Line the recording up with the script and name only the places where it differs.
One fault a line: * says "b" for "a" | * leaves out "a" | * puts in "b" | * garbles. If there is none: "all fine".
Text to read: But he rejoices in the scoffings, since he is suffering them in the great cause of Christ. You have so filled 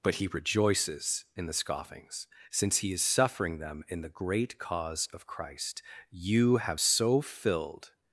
all fine